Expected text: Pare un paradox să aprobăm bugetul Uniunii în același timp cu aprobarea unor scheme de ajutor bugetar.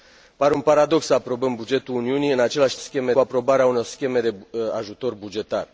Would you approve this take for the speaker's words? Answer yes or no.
no